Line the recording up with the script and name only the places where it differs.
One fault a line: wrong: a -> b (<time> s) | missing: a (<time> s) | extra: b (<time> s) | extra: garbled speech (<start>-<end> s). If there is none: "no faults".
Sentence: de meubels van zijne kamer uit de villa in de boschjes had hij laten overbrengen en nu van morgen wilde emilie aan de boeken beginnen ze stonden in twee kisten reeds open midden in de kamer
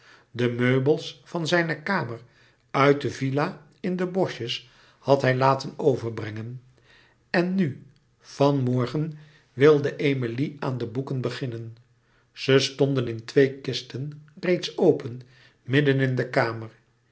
no faults